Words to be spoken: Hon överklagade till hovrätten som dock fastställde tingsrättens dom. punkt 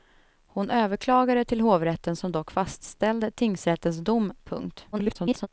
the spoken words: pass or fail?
fail